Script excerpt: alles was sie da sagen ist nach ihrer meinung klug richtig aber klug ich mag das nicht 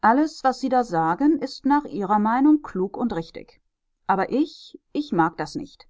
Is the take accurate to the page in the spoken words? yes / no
no